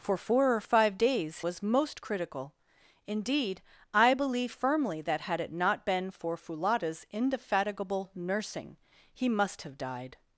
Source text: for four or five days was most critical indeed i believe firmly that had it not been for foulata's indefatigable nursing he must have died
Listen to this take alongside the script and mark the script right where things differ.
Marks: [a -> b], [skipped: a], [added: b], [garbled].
for four or five days was most critical indeed i believe firmly that had it not been for foulata's indefatigable nursing he must have died